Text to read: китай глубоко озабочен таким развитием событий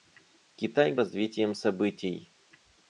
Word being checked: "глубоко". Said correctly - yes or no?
no